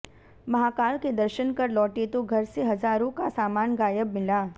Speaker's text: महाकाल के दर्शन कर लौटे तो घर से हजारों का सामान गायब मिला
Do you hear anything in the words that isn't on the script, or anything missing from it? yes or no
no